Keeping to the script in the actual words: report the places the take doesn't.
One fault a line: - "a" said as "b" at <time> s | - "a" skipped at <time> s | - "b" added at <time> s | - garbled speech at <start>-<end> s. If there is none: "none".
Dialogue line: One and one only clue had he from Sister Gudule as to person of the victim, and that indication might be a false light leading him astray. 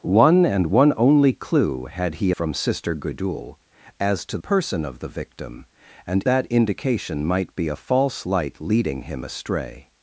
none